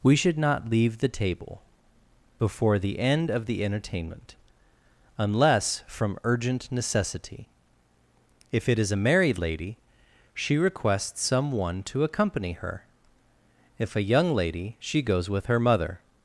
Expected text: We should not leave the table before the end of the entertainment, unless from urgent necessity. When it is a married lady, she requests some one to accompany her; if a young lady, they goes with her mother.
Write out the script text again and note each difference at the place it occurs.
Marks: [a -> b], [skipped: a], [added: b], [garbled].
We should not leave the table before the end of the entertainment, unless from urgent necessity. [When -> If] it is a married lady, she requests some one to accompany her; if a young lady, [they -> she] goes with her mother.